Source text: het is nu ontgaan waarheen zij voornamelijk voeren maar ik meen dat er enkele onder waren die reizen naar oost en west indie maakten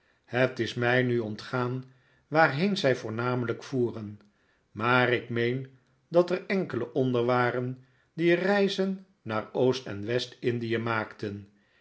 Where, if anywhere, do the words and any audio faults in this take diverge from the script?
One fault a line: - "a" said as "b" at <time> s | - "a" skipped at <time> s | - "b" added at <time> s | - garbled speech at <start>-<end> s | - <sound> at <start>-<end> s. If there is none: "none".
- "mij" added at 0.7 s